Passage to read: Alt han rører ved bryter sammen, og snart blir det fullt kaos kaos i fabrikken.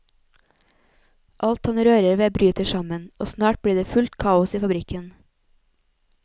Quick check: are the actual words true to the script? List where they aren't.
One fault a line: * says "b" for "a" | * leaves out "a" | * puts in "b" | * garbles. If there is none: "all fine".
* leaves out "kaos"